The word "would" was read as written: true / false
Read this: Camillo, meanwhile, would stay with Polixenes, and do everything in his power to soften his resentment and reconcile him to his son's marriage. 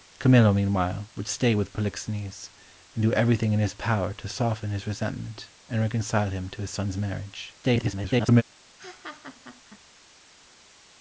true